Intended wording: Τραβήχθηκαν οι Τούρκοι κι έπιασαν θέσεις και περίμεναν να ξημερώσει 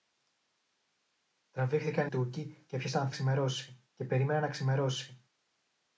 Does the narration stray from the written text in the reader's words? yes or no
yes